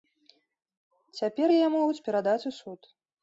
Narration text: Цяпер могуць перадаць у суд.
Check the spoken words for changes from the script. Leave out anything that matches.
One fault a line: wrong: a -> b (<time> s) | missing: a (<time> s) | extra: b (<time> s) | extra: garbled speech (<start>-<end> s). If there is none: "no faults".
extra: яе (1.6 s)